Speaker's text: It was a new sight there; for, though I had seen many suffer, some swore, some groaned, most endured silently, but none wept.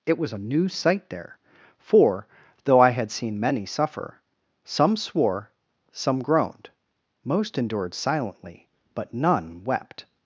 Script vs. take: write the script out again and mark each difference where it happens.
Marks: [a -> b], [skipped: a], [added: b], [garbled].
It was a new sight there; for, though I had seen many suffer, some swore, some groaned, most endured silently, but none wept.